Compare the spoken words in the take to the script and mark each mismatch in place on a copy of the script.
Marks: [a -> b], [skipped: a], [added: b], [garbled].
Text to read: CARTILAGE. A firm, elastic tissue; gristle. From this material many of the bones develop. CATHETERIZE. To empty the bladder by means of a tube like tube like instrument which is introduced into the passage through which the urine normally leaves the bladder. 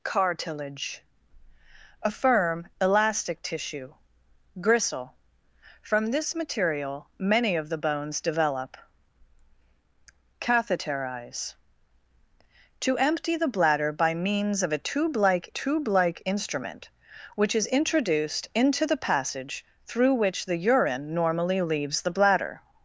CARTILAGE. A firm, elastic tissue; gristle. From this material many of the bones develop. CATHETERIZE. To empty the bladder by means of a tube like tube like instrument which is introduced into the passage through which the urine normally leaves the bladder.